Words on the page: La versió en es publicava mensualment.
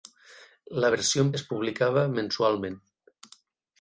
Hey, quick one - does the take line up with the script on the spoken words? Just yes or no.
yes